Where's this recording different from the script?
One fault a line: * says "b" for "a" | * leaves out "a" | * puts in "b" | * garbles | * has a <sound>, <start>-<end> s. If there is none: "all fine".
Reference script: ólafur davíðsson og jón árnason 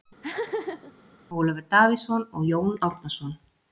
* has a laugh, 0.2-0.9 s